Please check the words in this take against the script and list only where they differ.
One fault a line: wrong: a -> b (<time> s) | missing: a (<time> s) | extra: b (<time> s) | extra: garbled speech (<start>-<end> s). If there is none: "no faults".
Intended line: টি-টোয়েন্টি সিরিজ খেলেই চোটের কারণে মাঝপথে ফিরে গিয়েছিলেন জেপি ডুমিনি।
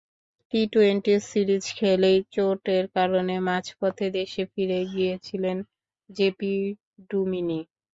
extra: দেশে (4.2 s)